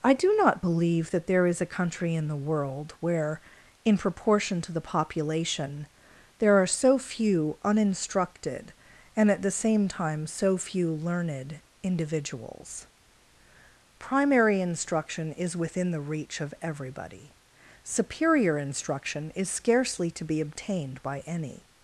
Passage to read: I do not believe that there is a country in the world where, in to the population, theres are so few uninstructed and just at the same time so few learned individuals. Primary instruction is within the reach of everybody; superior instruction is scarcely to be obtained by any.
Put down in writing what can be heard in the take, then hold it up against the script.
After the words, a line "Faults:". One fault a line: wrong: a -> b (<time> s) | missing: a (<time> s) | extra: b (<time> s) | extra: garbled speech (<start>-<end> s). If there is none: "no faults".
I do not believe that there is a country in the world where, in proportion to the population, there are so few uninstructed and at the same time so few learned individuals. Primary instruction is within the reach of everybody; superior instruction is scarcely to be obtained by any.
Faults:
extra: proportion (4.0 s)
wrong: theres -> there (6.4 s)
missing: just (9.3 s)